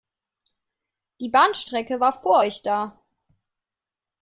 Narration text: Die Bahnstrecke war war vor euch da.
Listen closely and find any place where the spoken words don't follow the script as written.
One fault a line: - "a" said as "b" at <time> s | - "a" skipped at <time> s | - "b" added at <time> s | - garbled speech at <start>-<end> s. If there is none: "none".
- "war" skipped at 2.1 s